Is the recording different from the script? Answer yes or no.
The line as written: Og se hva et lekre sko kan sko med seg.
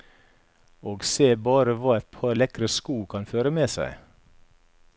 yes